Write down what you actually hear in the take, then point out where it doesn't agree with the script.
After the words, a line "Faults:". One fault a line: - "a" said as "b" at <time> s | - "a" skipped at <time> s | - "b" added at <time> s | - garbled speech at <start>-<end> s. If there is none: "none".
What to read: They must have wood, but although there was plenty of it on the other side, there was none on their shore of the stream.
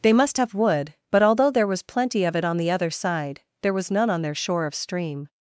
They must have wood, but although there was plenty of it on the other side, there was none on their shore of stream.
Faults:
- "the" skipped at 4.7 s